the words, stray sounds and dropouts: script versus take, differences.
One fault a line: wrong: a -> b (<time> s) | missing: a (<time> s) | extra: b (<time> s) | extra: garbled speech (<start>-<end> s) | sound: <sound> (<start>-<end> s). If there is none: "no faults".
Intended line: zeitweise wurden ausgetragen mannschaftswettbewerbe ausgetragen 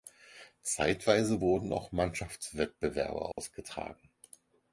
wrong: ausgetragen -> auch (1.7 s)
sound: dropout (3.3-3.4 s)